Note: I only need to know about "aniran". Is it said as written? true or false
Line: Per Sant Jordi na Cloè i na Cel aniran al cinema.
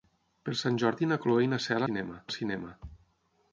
false